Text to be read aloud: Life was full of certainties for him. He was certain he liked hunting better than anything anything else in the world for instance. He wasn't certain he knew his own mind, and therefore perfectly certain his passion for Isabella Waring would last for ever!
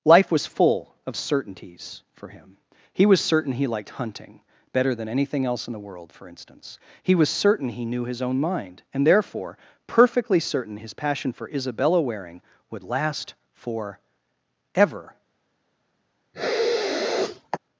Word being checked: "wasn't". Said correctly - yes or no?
no